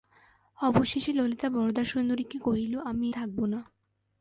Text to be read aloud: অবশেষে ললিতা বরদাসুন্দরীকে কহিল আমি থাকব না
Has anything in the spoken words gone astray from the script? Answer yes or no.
no